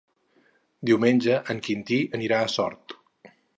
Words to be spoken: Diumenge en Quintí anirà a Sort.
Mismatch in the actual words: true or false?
false